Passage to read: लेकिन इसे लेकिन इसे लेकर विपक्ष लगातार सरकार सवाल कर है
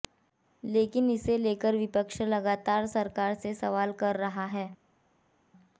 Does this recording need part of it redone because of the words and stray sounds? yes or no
yes